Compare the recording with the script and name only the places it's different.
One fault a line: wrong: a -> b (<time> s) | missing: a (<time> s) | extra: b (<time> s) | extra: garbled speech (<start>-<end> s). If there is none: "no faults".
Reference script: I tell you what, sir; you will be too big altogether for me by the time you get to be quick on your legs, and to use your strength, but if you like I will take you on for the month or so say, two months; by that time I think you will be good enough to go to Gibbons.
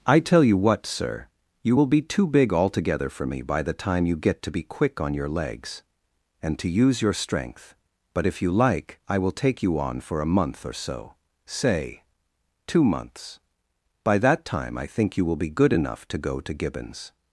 wrong: the -> a (10.2 s)